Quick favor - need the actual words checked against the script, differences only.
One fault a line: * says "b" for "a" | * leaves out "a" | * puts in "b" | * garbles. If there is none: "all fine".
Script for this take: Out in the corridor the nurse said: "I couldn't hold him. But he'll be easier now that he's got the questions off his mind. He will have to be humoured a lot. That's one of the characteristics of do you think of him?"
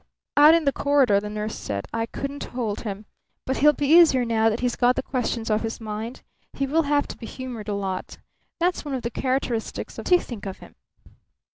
all fine